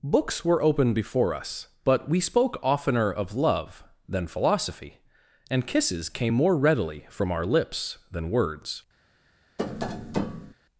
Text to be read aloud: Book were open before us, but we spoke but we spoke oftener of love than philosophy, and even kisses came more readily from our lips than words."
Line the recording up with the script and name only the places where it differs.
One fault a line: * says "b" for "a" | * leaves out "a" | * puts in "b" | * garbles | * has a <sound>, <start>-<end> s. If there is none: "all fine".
* says "Books" for "Book"
* leaves out "but we spoke"
* leaves out "even"
* has a tap, 9.6-10.5 s